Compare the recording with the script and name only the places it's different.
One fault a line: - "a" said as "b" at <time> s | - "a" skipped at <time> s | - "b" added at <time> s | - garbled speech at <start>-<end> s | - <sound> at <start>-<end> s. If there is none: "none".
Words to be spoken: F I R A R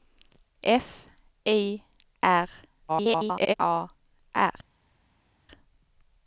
- garbled speech at 2.9-3.5 s